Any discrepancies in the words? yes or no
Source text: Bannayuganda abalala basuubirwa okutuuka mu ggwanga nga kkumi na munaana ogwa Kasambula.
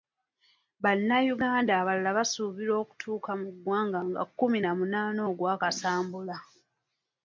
no